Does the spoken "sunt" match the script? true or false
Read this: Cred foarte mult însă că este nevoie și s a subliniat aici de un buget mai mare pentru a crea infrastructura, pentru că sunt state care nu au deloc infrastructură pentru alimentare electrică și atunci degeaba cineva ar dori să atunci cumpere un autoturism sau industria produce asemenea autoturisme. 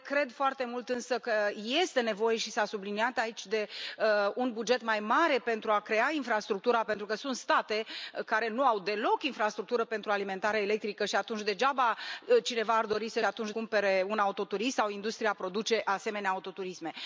true